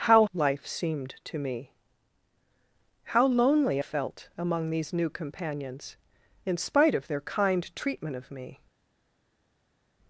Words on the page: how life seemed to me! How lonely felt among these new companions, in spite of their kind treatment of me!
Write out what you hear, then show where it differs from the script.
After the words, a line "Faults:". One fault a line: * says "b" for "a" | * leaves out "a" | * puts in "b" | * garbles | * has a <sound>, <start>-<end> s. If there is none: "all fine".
how life seemed to me! How lonely felt among these new companions, in spite of their kind treatment of me!
Faults:
all fine